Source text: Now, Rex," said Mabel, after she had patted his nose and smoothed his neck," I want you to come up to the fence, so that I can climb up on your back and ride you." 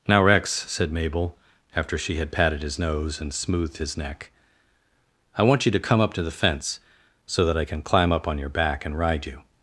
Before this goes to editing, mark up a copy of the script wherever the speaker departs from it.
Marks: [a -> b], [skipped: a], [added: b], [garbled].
Now, Rex," said Mabel, after she had patted his nose and smoothed his neck," I want you to come up to the fence, so that I can climb up on your back and ride you."